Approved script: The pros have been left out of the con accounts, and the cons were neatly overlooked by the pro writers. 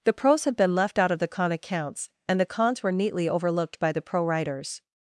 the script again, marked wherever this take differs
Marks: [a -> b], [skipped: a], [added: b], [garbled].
The pros have been left out of the con accounts, and the cons were neatly overlooked by the pro writers.